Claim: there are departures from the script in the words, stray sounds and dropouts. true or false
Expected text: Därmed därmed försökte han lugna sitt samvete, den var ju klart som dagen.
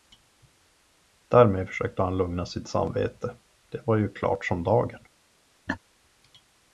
true